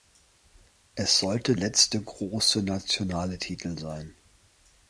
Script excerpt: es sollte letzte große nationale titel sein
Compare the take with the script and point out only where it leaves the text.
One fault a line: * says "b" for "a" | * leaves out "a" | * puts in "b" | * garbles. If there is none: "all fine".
all fine